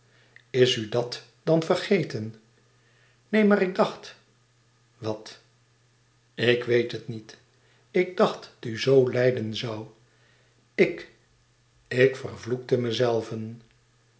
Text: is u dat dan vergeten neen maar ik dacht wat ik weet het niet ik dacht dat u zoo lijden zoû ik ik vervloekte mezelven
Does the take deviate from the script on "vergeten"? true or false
false